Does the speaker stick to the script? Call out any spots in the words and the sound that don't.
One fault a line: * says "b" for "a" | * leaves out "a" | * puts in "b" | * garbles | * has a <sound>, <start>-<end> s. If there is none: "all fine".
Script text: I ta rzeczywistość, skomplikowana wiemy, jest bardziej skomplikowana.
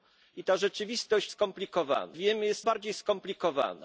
all fine